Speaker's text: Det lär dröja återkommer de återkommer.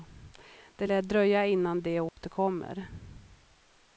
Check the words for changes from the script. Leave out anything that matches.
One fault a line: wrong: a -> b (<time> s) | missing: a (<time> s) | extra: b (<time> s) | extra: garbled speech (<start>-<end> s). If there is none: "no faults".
wrong: återkommer -> innan (1.5 s)